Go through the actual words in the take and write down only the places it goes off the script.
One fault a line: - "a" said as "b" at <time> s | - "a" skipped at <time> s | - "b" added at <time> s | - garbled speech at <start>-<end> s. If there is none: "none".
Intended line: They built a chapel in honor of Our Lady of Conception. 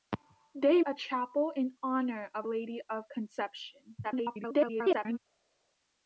- "built" skipped at 0.8 s
- "Our" skipped at 2.5 s
- garbled speech at 4.0-5.2 s